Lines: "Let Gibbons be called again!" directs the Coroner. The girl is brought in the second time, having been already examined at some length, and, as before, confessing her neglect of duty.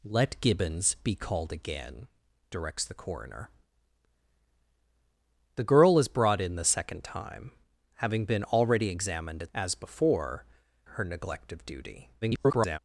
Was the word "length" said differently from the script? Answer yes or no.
yes